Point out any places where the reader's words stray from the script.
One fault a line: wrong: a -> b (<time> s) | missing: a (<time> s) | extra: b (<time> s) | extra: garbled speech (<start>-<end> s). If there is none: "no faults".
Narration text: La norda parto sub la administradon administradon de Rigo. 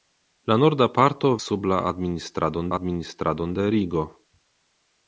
no faults